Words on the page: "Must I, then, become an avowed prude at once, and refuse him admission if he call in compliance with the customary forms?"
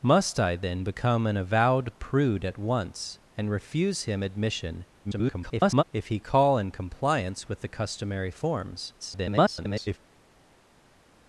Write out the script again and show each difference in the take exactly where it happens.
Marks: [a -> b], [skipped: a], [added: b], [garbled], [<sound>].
"Must I, then, become an avowed prude at once, and refuse him admission [garbled] if he call in compliance with the customary forms?" [garbled]